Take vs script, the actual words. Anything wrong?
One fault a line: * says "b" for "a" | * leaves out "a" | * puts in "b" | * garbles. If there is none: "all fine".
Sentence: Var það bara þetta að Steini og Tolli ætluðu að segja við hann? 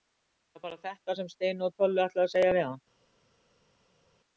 * says "sem" for "að"